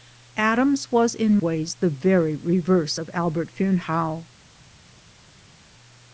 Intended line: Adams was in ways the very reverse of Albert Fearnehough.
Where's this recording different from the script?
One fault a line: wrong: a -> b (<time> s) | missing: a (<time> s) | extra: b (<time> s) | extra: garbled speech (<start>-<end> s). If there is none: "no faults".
no faults